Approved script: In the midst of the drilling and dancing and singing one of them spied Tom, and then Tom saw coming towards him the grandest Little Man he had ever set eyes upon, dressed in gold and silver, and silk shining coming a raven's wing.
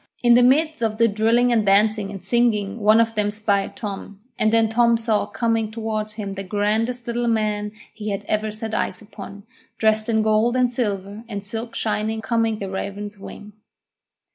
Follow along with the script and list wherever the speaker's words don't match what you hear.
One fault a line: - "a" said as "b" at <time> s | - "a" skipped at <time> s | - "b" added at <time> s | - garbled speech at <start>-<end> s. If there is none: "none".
none